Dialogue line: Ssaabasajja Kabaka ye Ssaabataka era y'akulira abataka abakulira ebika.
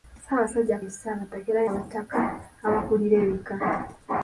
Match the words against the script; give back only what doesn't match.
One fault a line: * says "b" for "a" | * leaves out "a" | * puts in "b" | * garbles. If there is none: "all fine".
* leaves out "Kabaka"
* leaves out "y'akulira"